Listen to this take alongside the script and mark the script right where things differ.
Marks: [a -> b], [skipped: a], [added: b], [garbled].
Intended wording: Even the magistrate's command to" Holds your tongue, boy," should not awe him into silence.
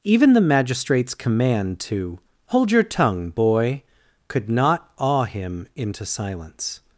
Even the magistrate's command to" [Holds -> Hold] your tongue, boy," [should -> could] not awe him into silence.